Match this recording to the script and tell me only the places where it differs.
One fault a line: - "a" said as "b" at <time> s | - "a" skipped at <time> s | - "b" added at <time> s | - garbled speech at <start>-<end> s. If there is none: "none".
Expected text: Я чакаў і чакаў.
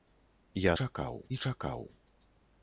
none